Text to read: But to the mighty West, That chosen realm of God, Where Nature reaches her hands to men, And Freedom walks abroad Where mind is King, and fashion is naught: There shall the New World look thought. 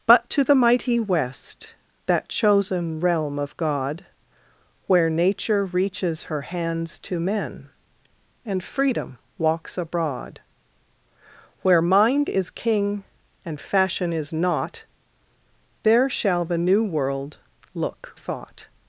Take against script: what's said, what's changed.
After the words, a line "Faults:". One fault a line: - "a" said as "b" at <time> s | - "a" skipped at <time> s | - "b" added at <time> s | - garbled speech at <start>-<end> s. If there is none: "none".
But to the mighty West, That chosen realm of God, Where Nature reaches her hands to men, And Freedom walks abroad Where mind is King, and fashion is naught: There shall the New World look thought.
Faults:
none